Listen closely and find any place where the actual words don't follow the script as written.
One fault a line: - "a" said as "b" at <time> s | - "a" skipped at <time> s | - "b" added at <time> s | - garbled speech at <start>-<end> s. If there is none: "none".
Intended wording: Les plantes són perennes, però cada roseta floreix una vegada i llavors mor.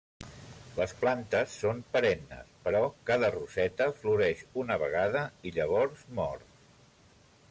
none